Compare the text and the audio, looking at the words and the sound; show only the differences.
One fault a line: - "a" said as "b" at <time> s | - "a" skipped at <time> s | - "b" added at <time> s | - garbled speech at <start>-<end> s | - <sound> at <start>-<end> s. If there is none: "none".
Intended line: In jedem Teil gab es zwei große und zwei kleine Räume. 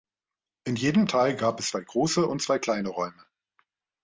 none